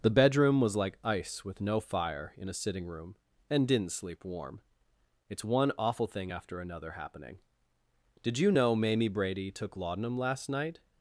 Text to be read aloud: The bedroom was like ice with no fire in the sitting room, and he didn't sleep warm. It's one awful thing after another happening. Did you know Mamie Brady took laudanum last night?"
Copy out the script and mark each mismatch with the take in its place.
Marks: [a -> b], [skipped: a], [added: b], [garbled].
The bedroom was like ice with no fire in [the -> a] sitting room, and [skipped: he] didn't sleep warm. It's one awful thing after another happening. Did you know Mamie Brady took laudanum last night?"